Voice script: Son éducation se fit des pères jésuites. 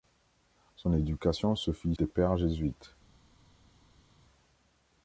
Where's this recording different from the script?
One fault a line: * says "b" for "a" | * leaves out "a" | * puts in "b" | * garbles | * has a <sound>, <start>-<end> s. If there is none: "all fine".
all fine